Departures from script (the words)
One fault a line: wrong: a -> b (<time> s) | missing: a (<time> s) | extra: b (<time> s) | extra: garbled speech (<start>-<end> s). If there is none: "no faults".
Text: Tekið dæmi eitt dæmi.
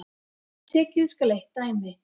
wrong: dæmi -> skal (1.1 s)